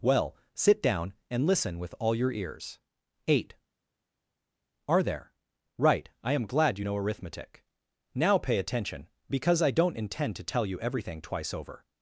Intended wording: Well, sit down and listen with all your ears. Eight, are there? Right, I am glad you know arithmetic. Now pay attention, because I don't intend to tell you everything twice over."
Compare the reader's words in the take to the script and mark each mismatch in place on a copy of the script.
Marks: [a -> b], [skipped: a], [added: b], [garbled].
Well, sit down and listen with all your ears. Eight, are there? Right, I am glad you know arithmetic. Now pay attention, because I don't intend to tell you everything twice over."